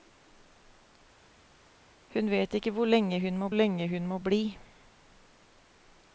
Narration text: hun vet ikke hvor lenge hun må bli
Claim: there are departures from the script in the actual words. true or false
true